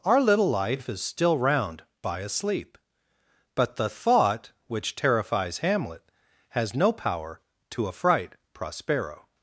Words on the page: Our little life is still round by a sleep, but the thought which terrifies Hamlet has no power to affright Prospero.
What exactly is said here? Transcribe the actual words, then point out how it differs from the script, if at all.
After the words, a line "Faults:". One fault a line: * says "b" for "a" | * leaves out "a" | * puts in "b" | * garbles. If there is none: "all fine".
Our little life is still round by a sleep, but the thought which terrifies Hamlet has no power to affright Prospero.
Faults:
all fine